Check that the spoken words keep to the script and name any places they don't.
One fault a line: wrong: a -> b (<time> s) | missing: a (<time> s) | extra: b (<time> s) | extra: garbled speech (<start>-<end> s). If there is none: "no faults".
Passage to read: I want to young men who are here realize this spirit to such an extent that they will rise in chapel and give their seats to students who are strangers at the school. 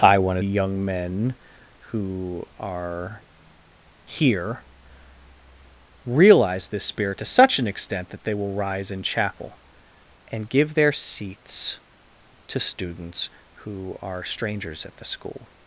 no faults